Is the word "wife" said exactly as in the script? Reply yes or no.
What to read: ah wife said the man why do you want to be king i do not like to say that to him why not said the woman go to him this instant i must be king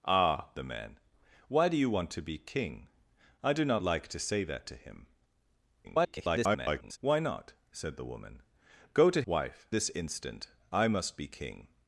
no